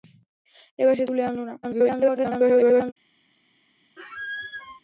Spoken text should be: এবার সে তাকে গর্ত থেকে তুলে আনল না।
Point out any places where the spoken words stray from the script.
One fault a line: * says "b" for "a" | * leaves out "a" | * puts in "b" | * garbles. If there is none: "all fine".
* leaves out "তাকে গর্ত থেকে"
* garbles